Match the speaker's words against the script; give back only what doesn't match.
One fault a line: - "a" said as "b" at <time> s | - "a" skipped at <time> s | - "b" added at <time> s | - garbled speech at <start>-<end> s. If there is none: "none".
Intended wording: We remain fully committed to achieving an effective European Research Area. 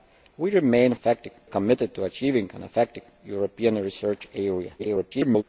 - "fully" said as "effective" at 0.9 s
- garbled speech at 4.8-5.4 s